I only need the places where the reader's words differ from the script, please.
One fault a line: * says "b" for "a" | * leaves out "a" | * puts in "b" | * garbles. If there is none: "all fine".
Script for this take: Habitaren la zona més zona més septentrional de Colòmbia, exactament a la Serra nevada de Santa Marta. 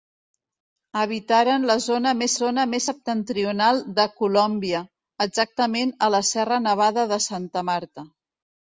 all fine